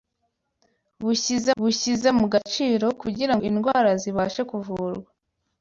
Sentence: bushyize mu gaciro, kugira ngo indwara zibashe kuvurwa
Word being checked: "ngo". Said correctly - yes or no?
no